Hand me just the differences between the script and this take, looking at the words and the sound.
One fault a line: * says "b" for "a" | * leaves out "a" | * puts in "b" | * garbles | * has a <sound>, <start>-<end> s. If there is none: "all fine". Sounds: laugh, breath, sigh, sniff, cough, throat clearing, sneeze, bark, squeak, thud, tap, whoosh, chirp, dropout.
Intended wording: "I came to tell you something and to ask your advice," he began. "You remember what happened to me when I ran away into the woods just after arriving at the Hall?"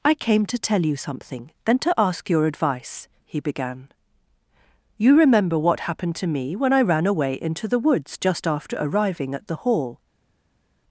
* says "then" for "and"